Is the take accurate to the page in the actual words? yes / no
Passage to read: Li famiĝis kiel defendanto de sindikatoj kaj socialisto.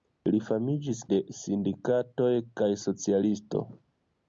no